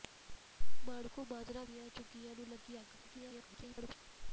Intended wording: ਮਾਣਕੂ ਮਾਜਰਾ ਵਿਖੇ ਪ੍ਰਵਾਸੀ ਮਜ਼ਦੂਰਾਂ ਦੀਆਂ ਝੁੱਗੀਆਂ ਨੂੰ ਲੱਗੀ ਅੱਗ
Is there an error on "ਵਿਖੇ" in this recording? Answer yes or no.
yes